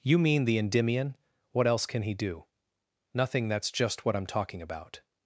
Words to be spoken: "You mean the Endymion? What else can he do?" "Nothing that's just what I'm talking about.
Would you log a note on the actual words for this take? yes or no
no